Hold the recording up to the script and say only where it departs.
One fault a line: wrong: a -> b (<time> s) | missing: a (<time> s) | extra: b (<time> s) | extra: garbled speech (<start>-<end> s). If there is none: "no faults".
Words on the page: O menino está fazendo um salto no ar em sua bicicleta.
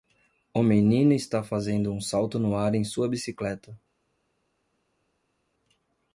no faults